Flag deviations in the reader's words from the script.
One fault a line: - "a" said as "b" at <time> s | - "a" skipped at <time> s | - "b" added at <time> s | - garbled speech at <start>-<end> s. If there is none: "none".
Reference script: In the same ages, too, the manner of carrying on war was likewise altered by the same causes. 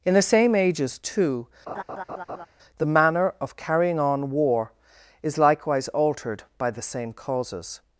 - "was" said as "is" at 5.2 s